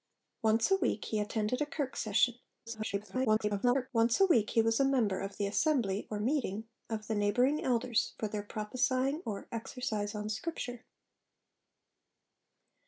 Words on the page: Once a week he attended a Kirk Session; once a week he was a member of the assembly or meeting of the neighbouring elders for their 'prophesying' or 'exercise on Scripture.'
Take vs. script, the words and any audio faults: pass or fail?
fail